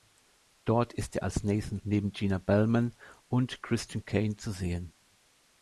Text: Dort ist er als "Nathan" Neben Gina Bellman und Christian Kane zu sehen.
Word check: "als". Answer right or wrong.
right